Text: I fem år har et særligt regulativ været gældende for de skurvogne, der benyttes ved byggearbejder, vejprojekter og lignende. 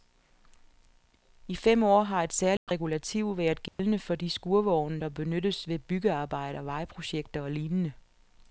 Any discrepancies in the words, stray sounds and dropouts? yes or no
yes